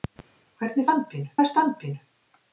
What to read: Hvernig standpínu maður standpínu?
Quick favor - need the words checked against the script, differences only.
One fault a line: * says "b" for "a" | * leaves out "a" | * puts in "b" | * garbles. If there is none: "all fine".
all fine